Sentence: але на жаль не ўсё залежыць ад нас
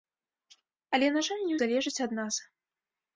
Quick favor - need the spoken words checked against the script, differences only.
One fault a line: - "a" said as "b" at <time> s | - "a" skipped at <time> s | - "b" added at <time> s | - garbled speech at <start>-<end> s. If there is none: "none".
- "ўсё" skipped at 1.6 s